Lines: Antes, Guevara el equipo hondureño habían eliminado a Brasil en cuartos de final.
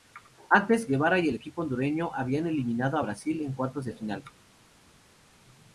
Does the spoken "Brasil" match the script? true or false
true